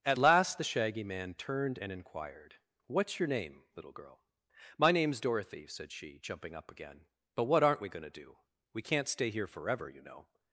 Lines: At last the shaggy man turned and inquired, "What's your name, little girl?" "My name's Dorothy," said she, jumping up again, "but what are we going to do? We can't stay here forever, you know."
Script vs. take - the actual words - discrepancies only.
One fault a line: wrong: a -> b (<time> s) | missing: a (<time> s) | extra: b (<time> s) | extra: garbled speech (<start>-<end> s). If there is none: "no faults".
wrong: are -> aren't (7.6 s)